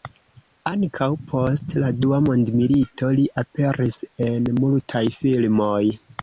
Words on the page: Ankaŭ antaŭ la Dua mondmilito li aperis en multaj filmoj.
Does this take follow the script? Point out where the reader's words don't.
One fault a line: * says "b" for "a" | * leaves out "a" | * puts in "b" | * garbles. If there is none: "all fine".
* says "post" for "antaŭ"